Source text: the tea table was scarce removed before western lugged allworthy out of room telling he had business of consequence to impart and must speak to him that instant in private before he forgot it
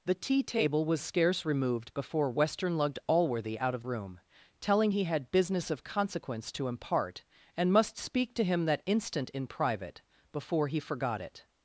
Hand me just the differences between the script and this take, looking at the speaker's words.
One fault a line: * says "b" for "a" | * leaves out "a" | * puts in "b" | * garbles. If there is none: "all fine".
all fine